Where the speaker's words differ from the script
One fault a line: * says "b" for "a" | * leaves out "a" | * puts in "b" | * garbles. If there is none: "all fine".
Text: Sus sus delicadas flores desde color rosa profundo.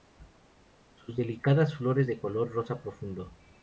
* leaves out "sus"
* says "de" for "desde"